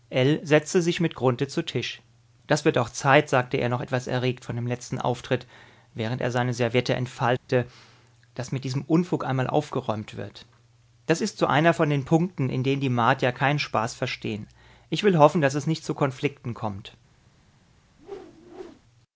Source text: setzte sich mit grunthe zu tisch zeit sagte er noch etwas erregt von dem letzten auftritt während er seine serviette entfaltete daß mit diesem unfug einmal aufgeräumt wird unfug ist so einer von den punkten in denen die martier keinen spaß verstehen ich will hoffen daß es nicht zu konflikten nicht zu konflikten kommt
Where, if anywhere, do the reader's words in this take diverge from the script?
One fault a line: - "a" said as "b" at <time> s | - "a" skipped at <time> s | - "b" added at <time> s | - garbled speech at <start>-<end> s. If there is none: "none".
- "das wird auch" added at 2.5 s
- "unfug" said as "das" at 11.1 s
- "nicht zu konflikten" skipped at 16.5 s